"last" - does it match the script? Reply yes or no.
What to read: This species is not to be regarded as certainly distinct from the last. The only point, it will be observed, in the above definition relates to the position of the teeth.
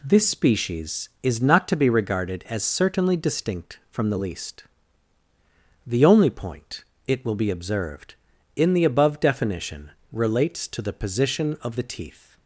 no